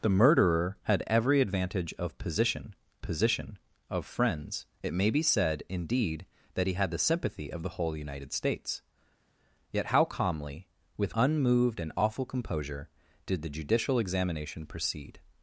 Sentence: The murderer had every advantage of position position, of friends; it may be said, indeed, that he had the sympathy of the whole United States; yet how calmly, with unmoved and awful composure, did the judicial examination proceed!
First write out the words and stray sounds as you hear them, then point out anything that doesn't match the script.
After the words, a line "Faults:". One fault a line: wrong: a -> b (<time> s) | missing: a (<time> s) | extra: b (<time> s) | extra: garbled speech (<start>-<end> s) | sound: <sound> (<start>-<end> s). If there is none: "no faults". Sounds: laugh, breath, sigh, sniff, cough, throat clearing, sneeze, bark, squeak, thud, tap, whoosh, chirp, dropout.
The murderer had every advantage of position position, of friends; it may be said, indeed, that he had the sympathy of the whole United States; yet how calmly, with unmoved and awful composure, did the judicial examination proceed!
Faults:
no faults